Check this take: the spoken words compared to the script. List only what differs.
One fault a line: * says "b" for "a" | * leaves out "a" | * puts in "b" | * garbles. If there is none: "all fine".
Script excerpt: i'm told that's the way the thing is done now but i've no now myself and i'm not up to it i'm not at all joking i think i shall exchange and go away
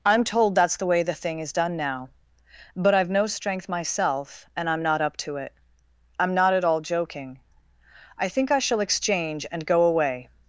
* says "strength" for "now"